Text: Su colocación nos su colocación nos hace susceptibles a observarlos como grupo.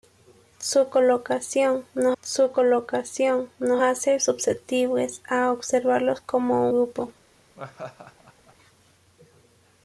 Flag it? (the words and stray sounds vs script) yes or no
yes